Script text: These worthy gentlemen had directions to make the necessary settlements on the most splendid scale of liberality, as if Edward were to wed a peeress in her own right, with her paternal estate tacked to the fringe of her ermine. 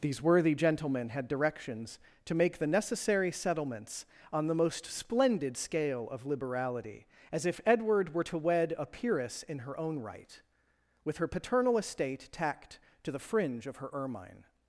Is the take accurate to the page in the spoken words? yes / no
yes